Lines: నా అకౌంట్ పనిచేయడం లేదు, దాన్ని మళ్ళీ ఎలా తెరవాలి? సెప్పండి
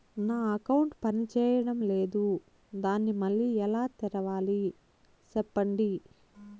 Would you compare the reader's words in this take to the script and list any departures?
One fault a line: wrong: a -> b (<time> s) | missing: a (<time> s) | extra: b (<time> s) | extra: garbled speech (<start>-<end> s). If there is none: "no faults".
no faults